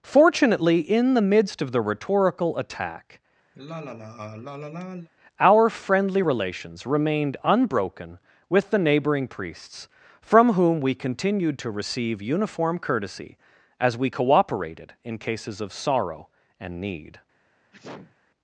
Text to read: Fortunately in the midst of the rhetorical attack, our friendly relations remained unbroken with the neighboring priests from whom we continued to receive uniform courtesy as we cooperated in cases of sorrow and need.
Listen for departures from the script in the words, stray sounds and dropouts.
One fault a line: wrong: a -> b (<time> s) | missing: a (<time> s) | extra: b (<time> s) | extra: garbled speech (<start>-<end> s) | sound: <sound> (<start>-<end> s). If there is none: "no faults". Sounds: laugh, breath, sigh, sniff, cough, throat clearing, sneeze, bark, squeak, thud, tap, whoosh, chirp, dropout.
sound: sigh (3.5-5.1 s)
sound: sneeze (17.7-18.2 s)